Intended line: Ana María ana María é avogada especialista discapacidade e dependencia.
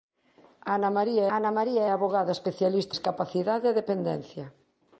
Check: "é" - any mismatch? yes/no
no